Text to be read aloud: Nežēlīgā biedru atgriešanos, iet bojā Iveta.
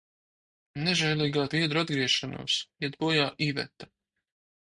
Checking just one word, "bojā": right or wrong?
right